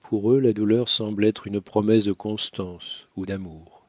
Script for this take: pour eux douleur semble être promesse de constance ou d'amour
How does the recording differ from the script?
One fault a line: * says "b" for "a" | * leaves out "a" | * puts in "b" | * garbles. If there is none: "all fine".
* puts in "la"
* puts in "une"